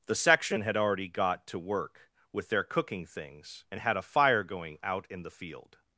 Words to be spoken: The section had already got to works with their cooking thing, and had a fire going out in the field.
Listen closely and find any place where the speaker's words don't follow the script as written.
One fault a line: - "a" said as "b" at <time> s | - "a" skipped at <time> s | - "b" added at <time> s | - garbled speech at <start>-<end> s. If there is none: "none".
- "works" said as "work" at 1.6 s
- "thing" said as "things" at 3.0 s